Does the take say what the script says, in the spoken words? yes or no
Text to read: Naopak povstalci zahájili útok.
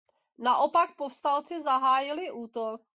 yes